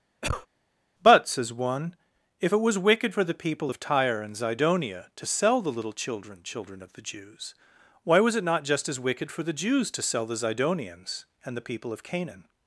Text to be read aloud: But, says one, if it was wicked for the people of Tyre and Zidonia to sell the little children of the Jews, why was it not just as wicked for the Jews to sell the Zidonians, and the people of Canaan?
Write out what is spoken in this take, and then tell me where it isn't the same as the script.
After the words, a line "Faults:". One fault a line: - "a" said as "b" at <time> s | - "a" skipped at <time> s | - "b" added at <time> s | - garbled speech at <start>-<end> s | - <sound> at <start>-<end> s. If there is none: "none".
But, says one, if it was wicked for the people of Tyre and Zidonia to sell the little children children of the Jews, why was it not just as wicked for the Jews to sell the Zidonians, and the people of Canaan?
Faults:
- cough at 0.2-0.5 s
- "children" added at 6.4 s